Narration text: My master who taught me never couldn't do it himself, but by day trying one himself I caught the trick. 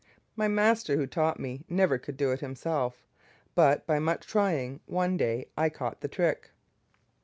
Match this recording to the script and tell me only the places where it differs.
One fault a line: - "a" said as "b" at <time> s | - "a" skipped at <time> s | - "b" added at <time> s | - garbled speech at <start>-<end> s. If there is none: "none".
- "couldn't" said as "could" at 2.0 s
- "day" said as "much" at 4.0 s
- "himself" said as "day" at 5.2 s